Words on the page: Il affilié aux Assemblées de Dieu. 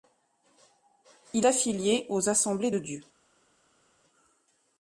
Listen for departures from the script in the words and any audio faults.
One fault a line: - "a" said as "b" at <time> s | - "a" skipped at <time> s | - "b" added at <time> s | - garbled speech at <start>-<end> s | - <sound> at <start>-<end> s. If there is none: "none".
none